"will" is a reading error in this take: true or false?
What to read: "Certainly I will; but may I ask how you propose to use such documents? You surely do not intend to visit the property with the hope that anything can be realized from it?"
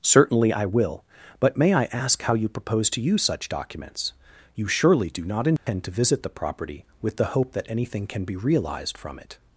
false